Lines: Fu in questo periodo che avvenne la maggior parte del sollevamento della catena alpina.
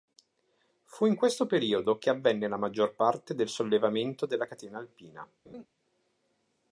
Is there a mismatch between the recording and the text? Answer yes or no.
no